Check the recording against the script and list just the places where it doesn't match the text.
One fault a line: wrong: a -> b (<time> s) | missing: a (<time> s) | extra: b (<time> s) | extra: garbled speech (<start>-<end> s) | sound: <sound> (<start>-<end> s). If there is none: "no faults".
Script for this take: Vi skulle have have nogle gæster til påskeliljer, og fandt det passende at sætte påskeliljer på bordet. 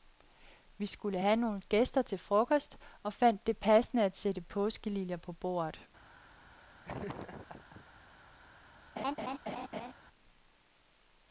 missing: have (1.4 s)
wrong: påskeliljer -> frokost (2.2 s)
sound: laugh (6.8-7.9 s)
sound: laugh (9.0-9.9 s)